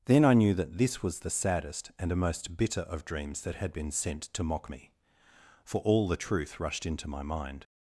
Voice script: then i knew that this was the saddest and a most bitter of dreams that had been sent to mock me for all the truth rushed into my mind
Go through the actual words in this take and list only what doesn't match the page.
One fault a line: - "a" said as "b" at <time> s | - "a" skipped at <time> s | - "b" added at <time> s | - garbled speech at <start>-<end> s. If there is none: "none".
none